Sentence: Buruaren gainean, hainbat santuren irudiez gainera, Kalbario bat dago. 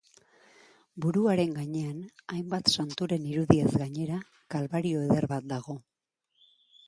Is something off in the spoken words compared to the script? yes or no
yes